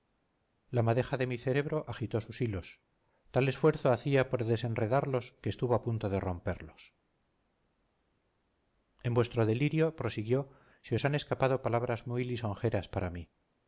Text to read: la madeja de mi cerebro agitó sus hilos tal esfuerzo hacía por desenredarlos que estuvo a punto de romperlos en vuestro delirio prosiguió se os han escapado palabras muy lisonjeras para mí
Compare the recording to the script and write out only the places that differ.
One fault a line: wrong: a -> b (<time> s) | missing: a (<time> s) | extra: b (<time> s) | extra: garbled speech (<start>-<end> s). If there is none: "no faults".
no faults